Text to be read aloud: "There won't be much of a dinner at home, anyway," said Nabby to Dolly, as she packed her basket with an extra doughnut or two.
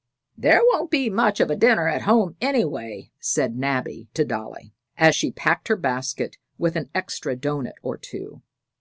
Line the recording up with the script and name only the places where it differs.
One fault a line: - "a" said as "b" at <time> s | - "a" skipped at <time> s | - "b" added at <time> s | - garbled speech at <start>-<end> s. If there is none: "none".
none